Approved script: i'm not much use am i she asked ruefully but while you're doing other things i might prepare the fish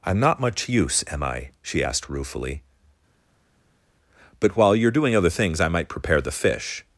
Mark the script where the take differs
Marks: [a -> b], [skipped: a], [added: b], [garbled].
i'm not much use am i she asked ruefully but while you're doing other things i might prepare the fish